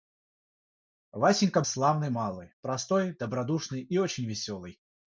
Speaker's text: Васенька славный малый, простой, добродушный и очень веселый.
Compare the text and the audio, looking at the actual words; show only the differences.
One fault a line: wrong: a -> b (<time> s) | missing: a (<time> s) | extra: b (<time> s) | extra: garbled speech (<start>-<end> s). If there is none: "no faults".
no faults